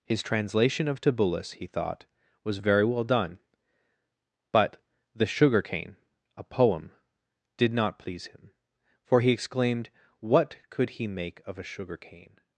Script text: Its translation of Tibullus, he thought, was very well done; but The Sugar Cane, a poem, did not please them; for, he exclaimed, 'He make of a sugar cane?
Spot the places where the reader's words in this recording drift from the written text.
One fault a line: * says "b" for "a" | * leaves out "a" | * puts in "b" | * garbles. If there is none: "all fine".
* says "His" for "Its"
* says "him" for "them"
* puts in "What could"